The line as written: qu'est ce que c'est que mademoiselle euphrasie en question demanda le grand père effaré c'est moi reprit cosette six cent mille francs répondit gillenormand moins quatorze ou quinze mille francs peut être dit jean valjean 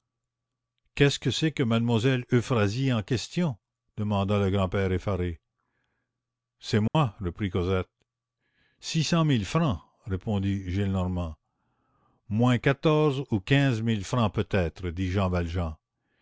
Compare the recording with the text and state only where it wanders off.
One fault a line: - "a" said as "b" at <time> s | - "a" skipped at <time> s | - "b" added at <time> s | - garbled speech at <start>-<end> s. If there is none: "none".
none